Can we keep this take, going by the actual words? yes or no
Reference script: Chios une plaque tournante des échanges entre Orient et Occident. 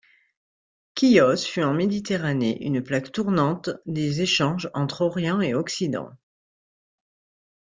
no